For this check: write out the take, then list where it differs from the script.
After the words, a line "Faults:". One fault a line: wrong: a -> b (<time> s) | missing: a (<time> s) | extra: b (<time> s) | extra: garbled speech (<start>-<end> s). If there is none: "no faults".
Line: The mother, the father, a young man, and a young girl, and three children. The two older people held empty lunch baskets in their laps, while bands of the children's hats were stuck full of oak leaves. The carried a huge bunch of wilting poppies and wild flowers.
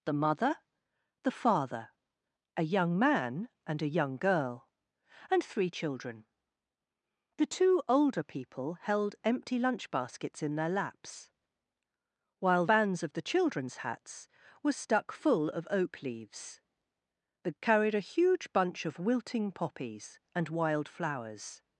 The mother, the father, a young man, and a young girl, and three children. The two older people held empty lunch baskets in their laps, while bands of the children's hats were stuck full of oak leaves. The carried a huge bunch of wilting poppies and wild flowers.
Faults:
no faults